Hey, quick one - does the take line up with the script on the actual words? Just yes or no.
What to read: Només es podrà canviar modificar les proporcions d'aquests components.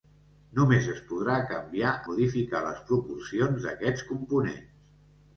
yes